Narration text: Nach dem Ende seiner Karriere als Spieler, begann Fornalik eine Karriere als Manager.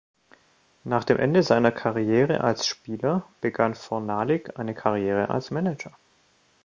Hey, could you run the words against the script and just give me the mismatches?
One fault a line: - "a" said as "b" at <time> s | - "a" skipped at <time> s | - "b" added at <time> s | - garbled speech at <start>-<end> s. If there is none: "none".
none